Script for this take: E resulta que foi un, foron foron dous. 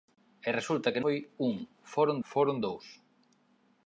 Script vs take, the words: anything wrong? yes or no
no